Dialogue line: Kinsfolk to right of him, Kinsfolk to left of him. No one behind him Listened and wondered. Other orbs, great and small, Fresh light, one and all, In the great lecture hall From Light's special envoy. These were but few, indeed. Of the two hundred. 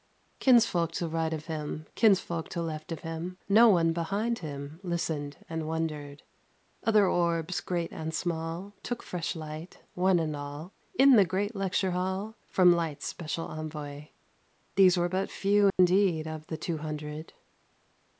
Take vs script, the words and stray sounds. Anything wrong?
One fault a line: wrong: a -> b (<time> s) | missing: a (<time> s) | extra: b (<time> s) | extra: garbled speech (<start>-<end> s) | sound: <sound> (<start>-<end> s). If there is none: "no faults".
extra: Took (8.8 s)
sound: dropout (15.7-15.8 s)